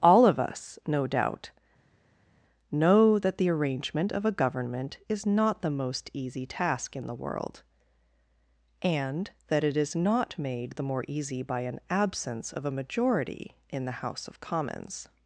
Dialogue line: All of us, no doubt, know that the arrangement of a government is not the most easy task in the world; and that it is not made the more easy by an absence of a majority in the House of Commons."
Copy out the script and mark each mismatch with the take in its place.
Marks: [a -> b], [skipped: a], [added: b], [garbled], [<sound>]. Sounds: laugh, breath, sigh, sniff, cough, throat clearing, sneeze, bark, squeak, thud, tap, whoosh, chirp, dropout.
All of us, no doubt, know that the arrangement of a government is not the most easy task in the world; and that it is not made the more easy by an absence of a majority in the House of Commons."